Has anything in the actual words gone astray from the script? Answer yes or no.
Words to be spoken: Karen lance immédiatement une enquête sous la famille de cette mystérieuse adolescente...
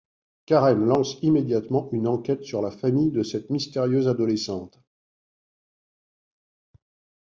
yes